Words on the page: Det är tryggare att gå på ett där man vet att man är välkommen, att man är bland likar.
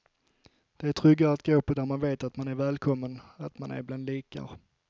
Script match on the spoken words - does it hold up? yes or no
yes